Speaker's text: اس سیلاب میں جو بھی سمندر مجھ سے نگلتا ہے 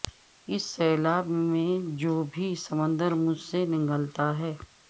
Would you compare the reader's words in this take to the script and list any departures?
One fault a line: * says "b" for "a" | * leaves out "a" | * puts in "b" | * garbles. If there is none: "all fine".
all fine